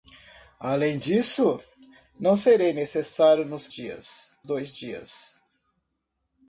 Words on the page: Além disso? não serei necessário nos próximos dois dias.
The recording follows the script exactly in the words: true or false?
false